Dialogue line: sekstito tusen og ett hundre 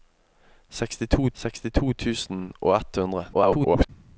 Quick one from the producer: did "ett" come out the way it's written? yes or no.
yes